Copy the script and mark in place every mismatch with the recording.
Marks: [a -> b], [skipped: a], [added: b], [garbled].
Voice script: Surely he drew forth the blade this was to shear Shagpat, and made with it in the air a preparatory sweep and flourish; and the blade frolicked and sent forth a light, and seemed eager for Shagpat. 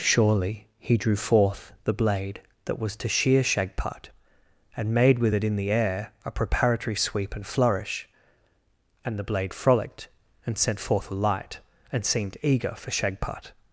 Surely he drew forth the blade [this -> that] was to shear Shagpat, and made with it in the air a preparatory sweep and flourish; and the blade frolicked and sent forth a light, and seemed eager for Shagpat.